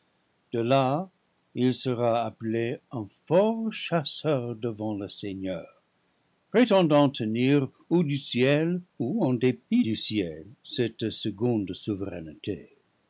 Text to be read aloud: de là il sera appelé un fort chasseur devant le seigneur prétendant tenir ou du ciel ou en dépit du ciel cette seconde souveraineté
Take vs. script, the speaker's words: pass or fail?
pass